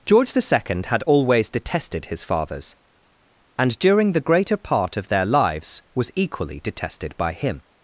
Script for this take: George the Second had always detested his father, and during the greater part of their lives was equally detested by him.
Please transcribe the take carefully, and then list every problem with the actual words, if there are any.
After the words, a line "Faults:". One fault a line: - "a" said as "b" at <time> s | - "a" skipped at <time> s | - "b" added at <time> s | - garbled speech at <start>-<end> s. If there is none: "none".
George the Second had always detested his fathers, and during the greater part of their lives was equally detested by him.
Faults:
- "father" said as "fathers" at 2.2 s